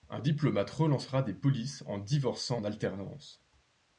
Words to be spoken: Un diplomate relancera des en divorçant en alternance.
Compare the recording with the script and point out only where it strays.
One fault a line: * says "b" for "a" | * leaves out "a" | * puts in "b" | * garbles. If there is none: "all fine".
* puts in "polices"